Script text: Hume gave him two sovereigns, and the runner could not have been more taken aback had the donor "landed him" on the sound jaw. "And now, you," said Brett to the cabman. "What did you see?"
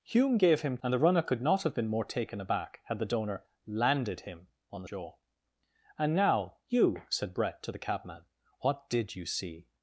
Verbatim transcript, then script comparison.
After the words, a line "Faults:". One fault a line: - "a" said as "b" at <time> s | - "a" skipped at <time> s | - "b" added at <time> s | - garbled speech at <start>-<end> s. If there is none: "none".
Hume gave him and the runner could not have been more taken aback had the donor "landed him" on the jaw. "And now, you," said Brett to the cabman. "What did you see?"
Faults:
- "two sovereigns" skipped at 0.8 s
- "sound" skipped at 4.9 s